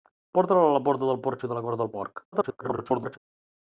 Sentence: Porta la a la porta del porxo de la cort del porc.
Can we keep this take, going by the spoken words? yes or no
no